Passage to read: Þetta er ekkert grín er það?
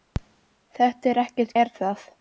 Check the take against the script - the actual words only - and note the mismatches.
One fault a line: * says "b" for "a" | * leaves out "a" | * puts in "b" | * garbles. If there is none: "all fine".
* leaves out "grín"